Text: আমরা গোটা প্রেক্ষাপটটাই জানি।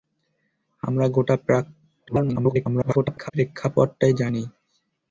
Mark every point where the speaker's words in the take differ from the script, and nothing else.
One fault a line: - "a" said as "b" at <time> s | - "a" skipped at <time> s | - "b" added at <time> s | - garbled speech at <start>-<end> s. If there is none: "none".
- garbled speech at 2.1-3.3 s